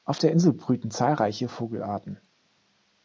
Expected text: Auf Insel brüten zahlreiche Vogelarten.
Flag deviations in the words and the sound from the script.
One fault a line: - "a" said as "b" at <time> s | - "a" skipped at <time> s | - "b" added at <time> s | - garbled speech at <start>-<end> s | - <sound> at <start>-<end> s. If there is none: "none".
- "der" added at 0.2 s